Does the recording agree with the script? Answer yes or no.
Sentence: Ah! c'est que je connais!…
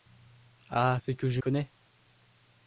yes